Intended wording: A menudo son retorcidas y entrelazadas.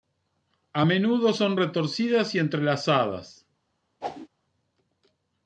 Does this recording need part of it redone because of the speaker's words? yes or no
no